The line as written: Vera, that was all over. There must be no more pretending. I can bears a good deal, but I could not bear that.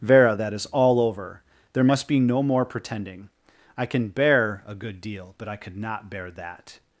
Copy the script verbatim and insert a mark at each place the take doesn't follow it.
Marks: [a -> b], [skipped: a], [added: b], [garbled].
Vera, that [was -> is] all over. There must be no more pretending. I can [bears -> bear] a good deal, but I could not bear that.